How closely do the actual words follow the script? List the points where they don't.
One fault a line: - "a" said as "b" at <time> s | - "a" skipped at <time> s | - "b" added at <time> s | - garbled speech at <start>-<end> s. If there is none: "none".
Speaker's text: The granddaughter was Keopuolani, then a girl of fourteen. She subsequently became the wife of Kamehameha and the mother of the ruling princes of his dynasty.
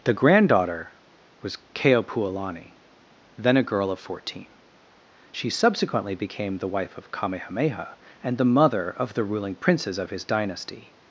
none